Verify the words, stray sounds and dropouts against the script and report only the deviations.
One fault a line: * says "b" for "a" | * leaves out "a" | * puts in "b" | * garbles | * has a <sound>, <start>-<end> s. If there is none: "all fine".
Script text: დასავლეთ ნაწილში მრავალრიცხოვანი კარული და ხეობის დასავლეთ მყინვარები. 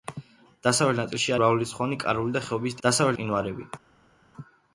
all fine